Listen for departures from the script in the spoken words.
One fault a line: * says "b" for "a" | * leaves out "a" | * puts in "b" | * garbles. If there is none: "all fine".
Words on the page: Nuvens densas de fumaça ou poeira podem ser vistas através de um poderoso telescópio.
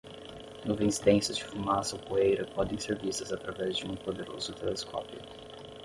all fine